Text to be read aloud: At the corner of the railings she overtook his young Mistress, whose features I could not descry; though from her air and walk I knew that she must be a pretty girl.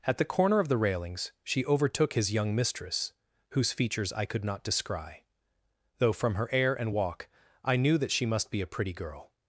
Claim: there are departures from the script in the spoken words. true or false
false